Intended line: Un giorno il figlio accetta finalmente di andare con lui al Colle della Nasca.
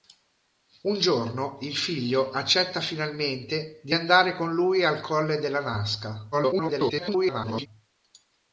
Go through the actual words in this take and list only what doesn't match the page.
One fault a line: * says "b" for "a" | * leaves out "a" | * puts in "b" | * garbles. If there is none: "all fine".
* garbles